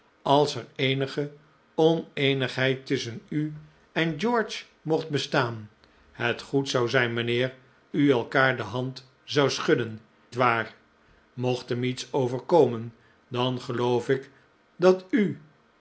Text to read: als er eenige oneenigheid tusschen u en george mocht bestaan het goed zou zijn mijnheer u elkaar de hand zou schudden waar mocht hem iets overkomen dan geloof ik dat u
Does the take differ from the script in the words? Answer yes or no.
no